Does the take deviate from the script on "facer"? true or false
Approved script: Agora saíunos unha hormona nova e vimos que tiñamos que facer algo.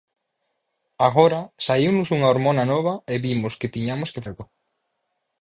true